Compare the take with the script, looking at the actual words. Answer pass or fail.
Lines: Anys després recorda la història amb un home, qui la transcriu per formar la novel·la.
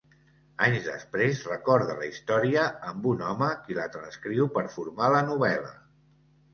pass